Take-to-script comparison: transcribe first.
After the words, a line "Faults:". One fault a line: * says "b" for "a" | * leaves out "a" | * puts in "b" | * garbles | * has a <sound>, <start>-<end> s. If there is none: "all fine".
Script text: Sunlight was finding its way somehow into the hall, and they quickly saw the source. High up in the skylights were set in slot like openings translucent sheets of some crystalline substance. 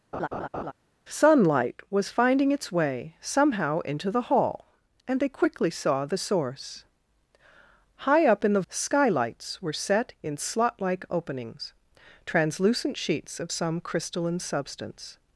Sunlight was finding its way somehow into the hall, and they quickly saw the source. High up in the skylights were set in slot like openings translucent sheets of some crystalline substance.
Faults:
* has a laugh, 0.1-0.7 s